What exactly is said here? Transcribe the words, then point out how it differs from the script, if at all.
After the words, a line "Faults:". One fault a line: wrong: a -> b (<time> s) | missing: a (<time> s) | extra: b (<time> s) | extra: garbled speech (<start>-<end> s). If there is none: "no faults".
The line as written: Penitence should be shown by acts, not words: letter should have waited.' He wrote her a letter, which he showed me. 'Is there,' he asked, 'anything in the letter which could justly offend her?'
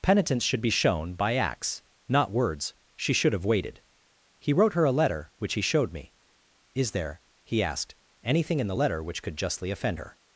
Penitence should be shown by acts, not words: she should have waited.' He wrote her a letter, which he showed me. 'Is there,' he asked, 'anything in the letter which could justly offend her?'
Faults:
wrong: letter -> she (3.0 s)